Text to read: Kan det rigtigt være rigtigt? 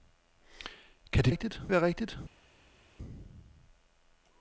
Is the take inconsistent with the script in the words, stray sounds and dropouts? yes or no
no